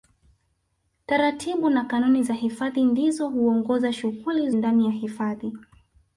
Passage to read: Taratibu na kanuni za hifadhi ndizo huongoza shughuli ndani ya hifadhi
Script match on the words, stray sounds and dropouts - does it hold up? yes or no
yes